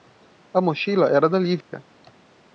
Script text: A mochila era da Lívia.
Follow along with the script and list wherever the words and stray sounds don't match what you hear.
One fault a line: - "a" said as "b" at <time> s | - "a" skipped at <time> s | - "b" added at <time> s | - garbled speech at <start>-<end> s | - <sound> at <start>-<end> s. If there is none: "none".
- dropout at 1.6-1.7 s